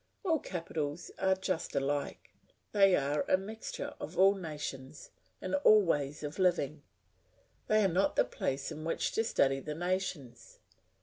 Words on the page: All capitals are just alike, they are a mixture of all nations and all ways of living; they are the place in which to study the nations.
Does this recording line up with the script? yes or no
no